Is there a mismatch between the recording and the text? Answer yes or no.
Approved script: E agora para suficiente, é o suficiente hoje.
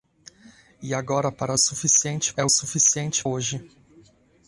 no